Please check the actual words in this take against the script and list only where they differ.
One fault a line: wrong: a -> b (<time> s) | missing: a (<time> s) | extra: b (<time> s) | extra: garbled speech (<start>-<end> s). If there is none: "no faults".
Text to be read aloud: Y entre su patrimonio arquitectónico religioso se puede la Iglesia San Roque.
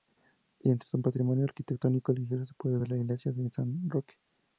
extra: ver (2.8 s)
extra: de (3.3 s)